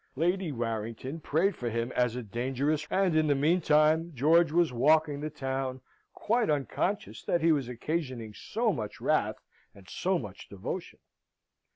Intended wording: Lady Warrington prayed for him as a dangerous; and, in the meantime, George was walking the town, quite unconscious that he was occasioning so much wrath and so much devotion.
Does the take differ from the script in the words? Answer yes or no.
no